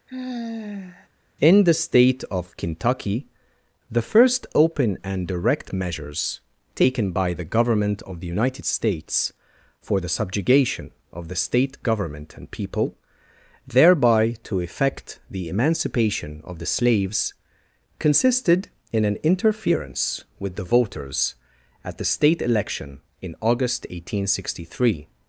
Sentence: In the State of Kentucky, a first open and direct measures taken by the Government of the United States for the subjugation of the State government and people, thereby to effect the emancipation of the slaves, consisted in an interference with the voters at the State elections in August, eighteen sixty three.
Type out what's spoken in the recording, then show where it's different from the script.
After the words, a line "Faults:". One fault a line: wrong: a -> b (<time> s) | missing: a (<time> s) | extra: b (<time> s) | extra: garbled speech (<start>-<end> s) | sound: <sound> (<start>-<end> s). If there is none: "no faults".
In the State of Kentucky, the first open and direct measures taken by the Government of the United States for the subjugation of the State government and people, thereby to effect the emancipation of the slaves, consisted in an interference with the voters at the State election in August, eighteen sixty three.
Faults:
sound: sigh (0.1-1.1 s)
wrong: a -> the (3.9 s)
wrong: elections -> election (22.4 s)